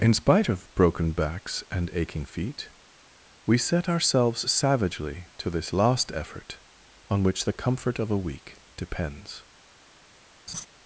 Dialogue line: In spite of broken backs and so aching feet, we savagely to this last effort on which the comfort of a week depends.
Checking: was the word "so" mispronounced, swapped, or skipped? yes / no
yes